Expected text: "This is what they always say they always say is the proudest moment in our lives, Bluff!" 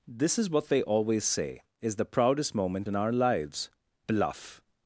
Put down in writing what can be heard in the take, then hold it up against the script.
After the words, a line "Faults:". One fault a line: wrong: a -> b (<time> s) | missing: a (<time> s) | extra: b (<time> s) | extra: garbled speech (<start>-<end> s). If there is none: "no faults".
"This is what they always say is the proudest moment in our lives, Bluff!"
Faults:
missing: they always say (1.6 s)